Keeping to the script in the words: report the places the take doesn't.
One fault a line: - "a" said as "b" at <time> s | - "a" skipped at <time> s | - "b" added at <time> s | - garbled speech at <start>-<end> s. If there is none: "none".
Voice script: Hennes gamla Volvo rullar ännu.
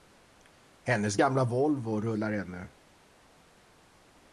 none